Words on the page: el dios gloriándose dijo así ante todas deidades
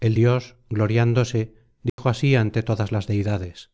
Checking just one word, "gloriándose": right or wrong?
right